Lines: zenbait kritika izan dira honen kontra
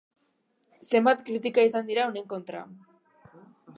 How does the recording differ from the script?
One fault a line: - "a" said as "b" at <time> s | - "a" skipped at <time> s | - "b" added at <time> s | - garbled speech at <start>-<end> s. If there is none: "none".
none